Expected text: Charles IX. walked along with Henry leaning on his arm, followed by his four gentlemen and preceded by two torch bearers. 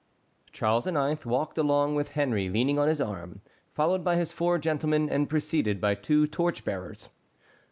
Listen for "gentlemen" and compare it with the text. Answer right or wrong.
right